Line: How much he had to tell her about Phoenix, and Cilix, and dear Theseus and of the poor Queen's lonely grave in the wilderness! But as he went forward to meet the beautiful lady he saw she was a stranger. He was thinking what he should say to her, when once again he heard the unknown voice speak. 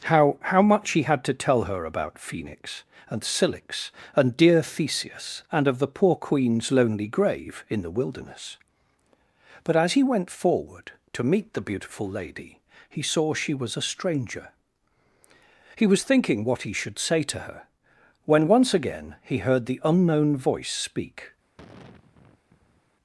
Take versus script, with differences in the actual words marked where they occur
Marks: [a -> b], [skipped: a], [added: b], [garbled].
How [added: how] much he had to tell her about Phoenix, and Cilix, and dear Theseus and of the poor Queen's lonely grave in the wilderness! But as he went forward to meet the beautiful lady he saw she was a stranger. He was thinking what he should say to her, when once again he heard the unknown voice speak.